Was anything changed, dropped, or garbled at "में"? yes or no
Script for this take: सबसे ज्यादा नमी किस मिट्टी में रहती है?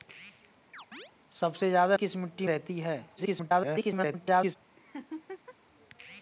yes